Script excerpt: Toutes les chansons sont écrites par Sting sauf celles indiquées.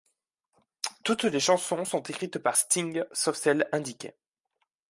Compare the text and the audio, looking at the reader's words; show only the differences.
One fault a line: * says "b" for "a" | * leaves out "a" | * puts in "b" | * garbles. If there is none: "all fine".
all fine